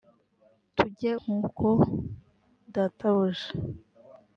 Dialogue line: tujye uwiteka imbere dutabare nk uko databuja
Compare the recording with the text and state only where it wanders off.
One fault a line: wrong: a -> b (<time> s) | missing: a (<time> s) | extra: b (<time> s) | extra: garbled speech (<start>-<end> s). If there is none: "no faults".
missing: uwiteka imbere dutabare (1.1 s)